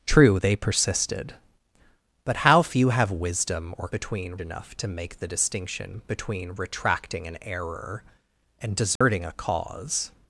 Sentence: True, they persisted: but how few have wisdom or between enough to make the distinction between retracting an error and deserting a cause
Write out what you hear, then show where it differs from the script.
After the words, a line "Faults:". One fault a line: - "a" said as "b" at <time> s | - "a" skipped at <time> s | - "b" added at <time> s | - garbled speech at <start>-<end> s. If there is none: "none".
True, they persisted: but how few have wisdom or between enough to make the distinction between retracting an error and deserting a cause
Faults:
none